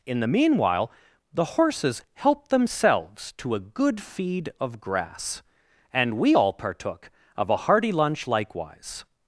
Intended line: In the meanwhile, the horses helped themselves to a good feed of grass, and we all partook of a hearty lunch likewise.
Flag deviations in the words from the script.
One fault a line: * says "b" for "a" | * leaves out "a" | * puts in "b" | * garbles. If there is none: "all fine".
all fine